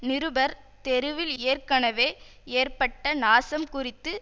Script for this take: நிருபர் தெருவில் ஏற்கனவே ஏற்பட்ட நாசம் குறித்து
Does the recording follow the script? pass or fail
pass